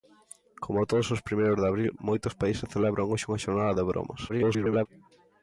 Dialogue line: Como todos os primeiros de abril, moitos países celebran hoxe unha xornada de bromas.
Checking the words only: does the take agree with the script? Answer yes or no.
no